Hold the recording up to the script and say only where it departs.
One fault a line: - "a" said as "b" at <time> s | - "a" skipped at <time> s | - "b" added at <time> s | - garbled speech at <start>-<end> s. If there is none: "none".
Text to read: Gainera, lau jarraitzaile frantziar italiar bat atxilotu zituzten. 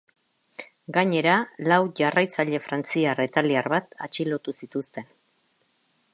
none